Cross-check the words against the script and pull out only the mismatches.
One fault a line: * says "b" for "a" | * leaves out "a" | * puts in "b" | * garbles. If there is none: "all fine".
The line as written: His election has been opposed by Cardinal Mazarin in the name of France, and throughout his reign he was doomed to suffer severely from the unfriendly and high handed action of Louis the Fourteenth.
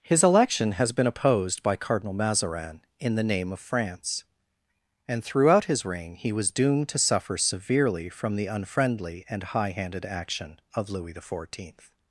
all fine